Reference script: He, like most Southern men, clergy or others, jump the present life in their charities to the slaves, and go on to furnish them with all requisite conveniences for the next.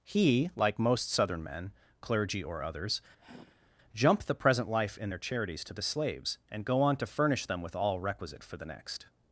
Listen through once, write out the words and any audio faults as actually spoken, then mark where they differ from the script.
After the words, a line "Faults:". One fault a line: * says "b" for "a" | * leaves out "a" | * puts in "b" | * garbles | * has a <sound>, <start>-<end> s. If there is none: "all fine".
He, like most Southern men, clergy or others, jump the present life in their charities to the slaves, and go on to furnish them with all requisite for the next.
Faults:
* has a sigh, 3.2-3.7 s
* leaves out "conveniences"